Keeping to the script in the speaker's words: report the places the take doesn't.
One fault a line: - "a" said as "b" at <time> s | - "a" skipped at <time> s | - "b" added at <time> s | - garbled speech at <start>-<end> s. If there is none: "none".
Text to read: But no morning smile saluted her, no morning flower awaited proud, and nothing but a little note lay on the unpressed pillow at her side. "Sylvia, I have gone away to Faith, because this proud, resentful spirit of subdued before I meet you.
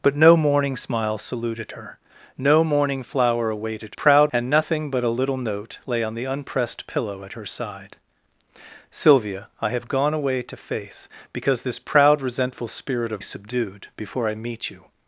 none